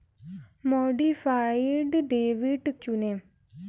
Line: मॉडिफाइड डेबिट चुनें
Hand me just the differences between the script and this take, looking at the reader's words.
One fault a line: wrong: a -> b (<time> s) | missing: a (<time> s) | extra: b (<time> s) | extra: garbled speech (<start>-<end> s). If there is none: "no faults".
no faults